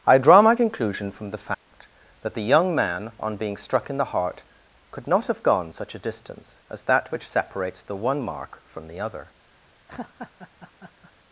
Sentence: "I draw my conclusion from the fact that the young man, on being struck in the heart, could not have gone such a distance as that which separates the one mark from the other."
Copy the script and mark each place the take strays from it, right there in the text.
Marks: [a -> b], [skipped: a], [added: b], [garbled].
"I draw my conclusion from the fact that the young man, on being struck in the heart, could not have gone such a distance as that which separates the one mark from the other."